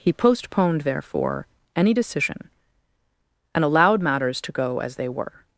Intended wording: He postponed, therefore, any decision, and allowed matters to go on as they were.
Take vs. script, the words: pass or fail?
fail